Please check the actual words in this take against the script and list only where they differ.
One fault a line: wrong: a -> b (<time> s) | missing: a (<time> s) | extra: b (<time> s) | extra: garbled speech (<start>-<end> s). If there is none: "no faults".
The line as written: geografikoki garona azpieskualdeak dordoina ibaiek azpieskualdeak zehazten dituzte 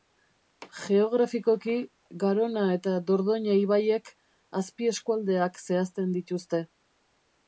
wrong: azpieskualdeak -> eta (2.8 s)